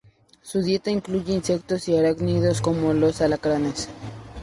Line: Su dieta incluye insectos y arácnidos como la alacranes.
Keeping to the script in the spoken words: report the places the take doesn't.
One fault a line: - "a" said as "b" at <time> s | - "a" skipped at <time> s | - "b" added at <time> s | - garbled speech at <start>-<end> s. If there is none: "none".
- "la" said as "los" at 2.9 s